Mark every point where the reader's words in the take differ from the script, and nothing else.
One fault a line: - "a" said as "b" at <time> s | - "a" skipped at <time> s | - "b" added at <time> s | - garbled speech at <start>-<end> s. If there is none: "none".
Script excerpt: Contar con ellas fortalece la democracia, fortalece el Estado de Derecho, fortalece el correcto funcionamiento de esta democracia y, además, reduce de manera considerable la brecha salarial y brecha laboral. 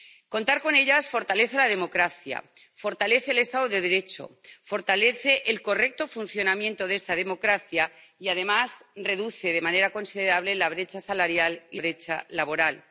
none